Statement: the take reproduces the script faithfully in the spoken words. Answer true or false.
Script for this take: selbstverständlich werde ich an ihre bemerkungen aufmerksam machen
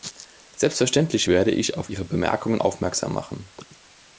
false